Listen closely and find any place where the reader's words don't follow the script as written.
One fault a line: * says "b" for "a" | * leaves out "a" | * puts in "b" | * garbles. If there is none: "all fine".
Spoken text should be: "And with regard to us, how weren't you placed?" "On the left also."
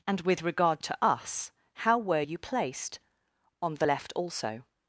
* says "were" for "weren't"